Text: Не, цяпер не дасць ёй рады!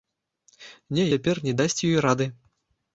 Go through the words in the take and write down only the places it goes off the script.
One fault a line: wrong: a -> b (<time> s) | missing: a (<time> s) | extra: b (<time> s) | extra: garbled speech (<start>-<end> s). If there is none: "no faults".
no faults